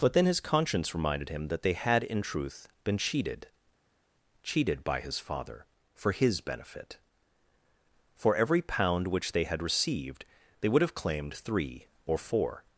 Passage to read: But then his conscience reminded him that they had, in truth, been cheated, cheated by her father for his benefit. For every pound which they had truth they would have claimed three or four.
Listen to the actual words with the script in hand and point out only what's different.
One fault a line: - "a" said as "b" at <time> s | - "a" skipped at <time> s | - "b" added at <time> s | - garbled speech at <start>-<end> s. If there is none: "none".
- "her" said as "his" at 5.0 s
- "truth" said as "received" at 9.6 s